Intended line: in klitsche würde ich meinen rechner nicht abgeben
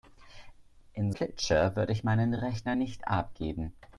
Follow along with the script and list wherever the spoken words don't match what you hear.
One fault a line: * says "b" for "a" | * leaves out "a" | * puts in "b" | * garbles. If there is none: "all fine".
all fine